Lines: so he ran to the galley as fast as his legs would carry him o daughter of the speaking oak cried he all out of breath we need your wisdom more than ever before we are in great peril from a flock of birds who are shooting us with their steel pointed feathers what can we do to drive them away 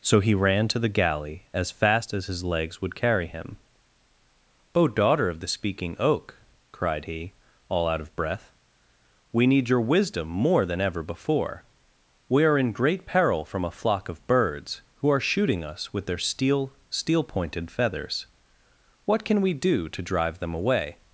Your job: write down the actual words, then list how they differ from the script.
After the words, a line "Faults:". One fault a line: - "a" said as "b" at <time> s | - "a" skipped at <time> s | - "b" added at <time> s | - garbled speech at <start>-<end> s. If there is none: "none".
so he ran to the galley as fast as his legs would carry him o daughter of the speaking oak cried he all out of breath we need your wisdom more than ever before we are in great peril from a flock of birds who are shooting us with their steel steel pointed feathers what can we do to drive them away
Faults:
- "steel" added at 16.9 s